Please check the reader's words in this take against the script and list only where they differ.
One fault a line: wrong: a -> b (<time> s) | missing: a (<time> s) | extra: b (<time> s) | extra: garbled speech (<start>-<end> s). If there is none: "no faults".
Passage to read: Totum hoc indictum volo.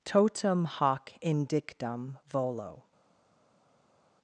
no faults